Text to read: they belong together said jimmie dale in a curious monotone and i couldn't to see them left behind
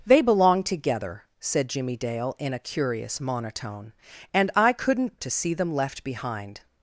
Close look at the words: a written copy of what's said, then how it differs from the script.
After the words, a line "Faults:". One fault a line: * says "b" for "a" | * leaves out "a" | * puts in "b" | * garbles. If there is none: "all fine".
they belong together said jimmie dale in a curious monotone and i couldn't to see them left behind
Faults:
all fine